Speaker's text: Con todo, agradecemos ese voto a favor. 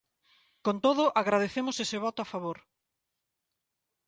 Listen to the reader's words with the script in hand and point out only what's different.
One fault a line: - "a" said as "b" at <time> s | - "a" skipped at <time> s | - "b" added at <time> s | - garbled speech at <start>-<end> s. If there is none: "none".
none